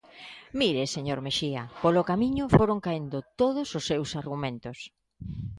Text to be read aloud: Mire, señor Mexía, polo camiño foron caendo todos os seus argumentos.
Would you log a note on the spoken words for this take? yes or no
no